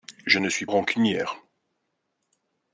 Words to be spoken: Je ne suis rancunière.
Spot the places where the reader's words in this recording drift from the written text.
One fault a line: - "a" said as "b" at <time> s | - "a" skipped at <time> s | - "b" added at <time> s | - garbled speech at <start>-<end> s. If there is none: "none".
none